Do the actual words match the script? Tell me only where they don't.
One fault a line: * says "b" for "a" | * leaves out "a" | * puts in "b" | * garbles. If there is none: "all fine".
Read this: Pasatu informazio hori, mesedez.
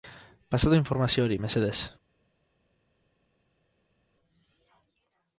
all fine